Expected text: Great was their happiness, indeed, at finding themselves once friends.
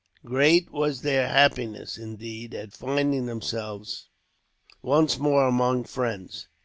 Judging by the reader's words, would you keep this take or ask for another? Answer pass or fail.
fail